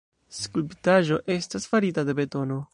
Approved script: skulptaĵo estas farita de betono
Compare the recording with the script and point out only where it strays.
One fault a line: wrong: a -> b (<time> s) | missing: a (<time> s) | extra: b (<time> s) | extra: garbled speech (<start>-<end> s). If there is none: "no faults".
no faults